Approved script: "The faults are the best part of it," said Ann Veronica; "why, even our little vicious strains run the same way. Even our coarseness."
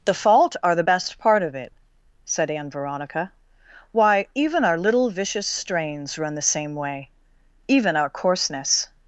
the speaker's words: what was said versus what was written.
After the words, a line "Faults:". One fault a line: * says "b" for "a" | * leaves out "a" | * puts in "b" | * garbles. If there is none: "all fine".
"The fault are the best part of it," said Ann Veronica; "why, even our little vicious strains run the same way. Even our coarseness."
Faults:
* says "fault" for "faults"